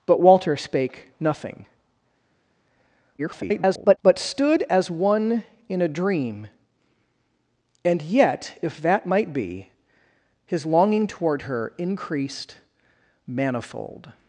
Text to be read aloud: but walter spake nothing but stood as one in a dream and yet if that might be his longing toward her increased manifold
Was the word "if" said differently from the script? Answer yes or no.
no